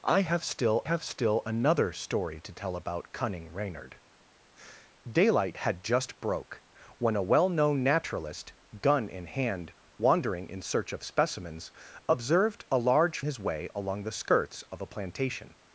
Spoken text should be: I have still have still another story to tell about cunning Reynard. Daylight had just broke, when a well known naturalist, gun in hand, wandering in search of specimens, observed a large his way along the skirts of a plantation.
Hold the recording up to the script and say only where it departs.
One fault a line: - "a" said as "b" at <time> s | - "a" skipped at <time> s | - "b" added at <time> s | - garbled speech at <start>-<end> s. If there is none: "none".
none